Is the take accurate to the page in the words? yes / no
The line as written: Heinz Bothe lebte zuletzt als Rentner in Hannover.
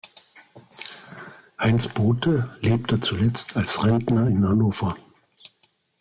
yes